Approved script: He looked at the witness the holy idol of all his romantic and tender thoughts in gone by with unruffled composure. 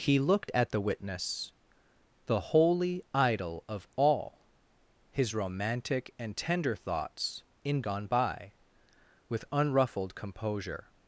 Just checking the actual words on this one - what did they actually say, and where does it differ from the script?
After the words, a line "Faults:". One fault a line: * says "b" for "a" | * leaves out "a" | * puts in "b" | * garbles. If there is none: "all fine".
He looked at the witness the holy idol of all his romantic and tender thoughts in gone by with unruffled composure.
Faults:
all fine